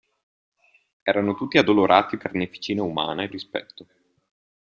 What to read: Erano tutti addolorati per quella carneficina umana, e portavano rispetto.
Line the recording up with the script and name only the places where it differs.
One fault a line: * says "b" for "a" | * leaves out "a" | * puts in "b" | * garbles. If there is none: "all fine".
* leaves out "per quella"
* leaves out "portavano"